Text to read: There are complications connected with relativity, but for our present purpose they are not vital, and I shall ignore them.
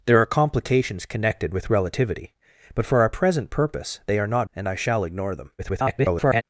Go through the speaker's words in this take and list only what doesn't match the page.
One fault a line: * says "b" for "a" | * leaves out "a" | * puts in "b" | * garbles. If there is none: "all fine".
* leaves out "vital"
* garbles